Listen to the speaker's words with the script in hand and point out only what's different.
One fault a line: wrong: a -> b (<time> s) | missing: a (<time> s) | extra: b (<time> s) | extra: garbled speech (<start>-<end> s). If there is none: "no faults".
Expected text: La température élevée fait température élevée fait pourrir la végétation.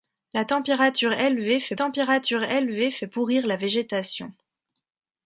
no faults